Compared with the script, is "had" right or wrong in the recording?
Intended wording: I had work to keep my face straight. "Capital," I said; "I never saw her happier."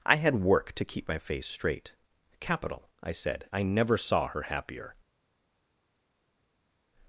right